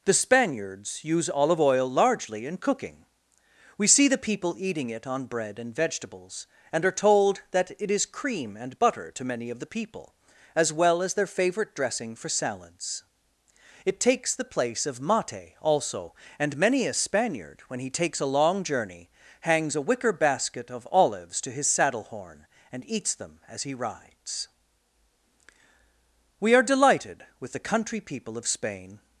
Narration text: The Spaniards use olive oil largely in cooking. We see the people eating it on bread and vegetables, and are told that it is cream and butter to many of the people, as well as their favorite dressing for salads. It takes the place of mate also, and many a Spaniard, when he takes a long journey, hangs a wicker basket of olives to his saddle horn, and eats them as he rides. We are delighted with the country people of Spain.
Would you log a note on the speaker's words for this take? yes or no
no